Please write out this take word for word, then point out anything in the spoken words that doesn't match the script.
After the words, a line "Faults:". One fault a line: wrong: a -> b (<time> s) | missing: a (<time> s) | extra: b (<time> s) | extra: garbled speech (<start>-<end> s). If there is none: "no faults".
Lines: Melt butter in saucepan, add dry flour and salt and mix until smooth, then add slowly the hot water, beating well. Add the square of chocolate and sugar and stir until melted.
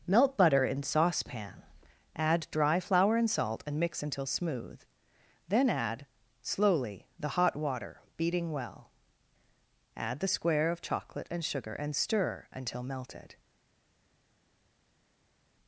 Melt butter in saucepan, add dry flour and salt and mix until smooth, then add slowly the hot water, beating well. Add the square of chocolate and sugar and stir until melted.
Faults:
no faults